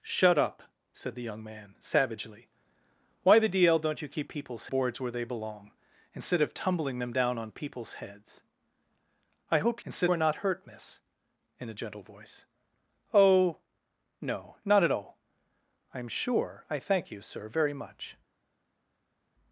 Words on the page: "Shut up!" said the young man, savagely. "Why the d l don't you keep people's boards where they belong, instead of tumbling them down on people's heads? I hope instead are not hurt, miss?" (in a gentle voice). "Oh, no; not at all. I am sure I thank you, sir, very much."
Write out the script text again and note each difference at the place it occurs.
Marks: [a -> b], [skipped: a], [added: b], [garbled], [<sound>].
"Shut up!" said the young man, savagely. "Why the d l don't you keep people's boards where they belong, instead of tumbling them down on people's heads? I hope instead are not hurt, miss?" (in a gentle voice). "Oh, no; not at all. I am sure I thank you, sir, very much."